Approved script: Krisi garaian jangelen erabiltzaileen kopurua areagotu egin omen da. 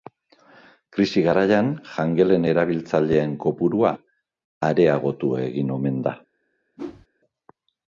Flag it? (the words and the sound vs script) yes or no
yes